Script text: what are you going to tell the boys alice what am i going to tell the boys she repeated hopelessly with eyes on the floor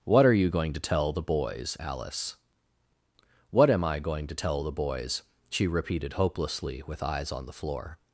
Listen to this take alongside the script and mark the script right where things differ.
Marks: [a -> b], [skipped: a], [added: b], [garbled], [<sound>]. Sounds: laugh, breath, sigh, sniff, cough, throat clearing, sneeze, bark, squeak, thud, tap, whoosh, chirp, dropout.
what are you going to tell the boys alice what am i going to tell the boys she repeated hopelessly with eyes on the floor